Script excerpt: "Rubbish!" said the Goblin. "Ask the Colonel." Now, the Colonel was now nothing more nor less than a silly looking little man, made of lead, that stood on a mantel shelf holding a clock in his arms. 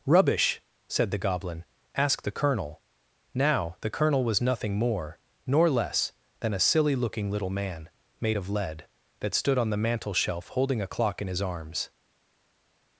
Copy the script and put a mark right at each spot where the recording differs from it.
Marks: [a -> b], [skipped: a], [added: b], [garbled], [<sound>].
"Rubbish!" said the Goblin. "Ask the Colonel." Now, the Colonel was [skipped: now] nothing more nor less than a silly looking little man, made of lead, that stood on [a -> the] mantel shelf holding a clock in his arms.